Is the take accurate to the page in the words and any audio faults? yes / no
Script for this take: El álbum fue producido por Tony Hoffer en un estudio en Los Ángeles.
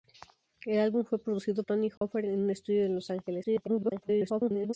no